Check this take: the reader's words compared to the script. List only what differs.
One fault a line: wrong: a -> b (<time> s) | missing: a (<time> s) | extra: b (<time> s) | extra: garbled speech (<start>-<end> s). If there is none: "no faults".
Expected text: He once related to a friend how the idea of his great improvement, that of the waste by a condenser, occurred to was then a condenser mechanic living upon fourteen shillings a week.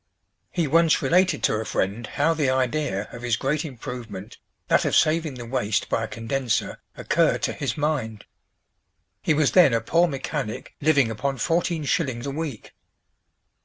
extra: saving (5.0 s)
extra: his mind He (7.5 s)
wrong: condenser -> poor (9.8 s)